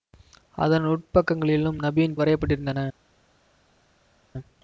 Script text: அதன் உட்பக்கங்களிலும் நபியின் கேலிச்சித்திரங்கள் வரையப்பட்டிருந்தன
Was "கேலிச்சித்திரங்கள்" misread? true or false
true